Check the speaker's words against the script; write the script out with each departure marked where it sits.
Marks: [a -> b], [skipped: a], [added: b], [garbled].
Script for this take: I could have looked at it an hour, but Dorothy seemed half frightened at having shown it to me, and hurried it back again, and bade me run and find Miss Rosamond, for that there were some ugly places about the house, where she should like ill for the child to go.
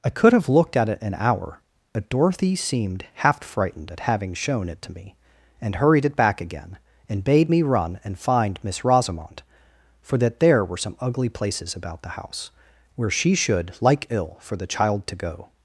I could have looked at it an hour, but Dorothy seemed half frightened at having shown it to me, and hurried it back again, and bade me run and find Miss Rosamond, for that there were some ugly places about the house, where she should like ill for the child to go.